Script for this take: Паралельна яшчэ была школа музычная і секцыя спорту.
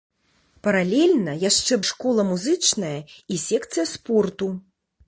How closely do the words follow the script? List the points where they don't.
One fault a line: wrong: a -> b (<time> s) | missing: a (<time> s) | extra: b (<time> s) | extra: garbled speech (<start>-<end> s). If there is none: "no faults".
missing: была (1.8 s)